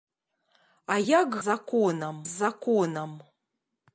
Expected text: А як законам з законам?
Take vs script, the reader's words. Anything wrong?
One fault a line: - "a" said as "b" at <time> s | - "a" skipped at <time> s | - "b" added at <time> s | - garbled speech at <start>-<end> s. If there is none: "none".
none